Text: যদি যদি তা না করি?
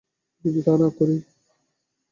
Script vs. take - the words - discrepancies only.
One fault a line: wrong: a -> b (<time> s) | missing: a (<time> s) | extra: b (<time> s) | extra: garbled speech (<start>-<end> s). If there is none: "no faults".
missing: যদি (0.6 s)